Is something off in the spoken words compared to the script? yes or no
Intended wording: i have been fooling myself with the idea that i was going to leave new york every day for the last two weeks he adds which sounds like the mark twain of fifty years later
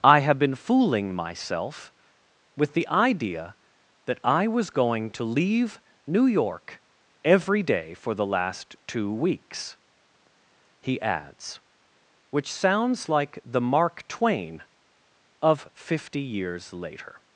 no